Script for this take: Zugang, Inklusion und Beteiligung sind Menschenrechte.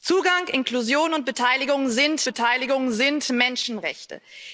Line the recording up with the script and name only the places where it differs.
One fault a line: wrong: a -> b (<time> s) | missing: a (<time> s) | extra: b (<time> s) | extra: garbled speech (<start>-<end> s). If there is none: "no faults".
extra: Beteiligung sind (2.2 s)